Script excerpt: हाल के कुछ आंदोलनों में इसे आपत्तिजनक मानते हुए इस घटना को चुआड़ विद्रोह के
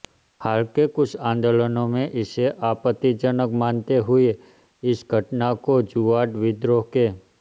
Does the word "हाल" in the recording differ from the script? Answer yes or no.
no